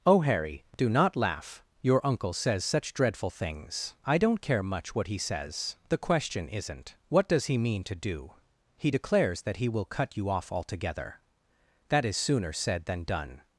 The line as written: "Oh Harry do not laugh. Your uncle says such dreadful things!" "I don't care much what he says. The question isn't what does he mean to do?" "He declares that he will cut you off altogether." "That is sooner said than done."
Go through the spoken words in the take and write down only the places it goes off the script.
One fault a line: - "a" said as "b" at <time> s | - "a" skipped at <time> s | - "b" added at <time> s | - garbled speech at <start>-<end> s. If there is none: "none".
none